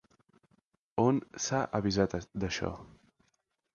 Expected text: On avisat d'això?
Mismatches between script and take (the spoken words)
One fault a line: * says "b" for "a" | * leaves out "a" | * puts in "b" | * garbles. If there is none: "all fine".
* puts in "s'ha"